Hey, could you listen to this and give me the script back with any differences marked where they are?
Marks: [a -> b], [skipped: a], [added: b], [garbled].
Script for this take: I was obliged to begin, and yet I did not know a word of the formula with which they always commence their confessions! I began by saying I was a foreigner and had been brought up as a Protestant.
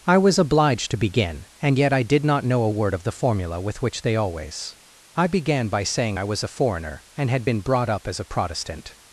I was obliged to begin, and yet I did not know a word of the formula with which they always [skipped: commence their confessions!] I began by saying I was a foreigner and had been brought up as a Protestant.